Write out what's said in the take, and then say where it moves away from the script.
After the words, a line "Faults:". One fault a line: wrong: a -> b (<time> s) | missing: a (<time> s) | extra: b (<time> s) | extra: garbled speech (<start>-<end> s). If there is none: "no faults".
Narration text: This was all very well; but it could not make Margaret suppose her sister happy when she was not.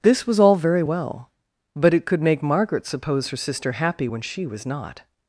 This was all very well; but it could make Margaret suppose her sister happy when she was not.
Faults:
missing: not (2.2 s)